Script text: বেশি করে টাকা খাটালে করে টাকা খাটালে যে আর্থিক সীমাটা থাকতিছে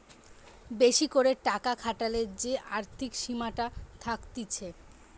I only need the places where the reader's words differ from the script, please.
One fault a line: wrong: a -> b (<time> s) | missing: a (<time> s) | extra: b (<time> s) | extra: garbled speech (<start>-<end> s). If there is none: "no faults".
missing: করে টাকা খাটালে (2.2 s)